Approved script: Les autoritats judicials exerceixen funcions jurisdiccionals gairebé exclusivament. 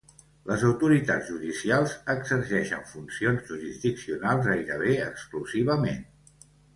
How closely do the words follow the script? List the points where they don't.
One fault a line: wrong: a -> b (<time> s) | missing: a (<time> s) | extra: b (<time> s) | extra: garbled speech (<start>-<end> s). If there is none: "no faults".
no faults